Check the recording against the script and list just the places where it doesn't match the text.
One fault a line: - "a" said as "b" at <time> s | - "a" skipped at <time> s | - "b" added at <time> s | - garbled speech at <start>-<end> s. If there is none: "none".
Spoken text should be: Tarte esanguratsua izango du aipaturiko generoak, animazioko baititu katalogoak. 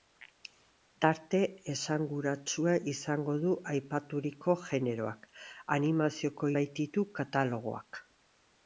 none